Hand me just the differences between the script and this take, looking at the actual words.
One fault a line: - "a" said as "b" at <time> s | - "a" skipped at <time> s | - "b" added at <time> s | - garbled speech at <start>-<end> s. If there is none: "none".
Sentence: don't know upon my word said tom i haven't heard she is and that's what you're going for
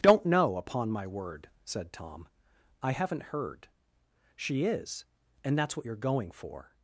none